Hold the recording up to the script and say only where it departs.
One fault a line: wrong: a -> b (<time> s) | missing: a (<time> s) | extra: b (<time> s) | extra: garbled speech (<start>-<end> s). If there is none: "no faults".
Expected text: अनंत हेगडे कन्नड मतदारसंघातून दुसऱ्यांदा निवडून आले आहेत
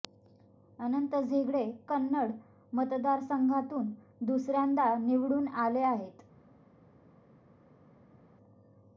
no faults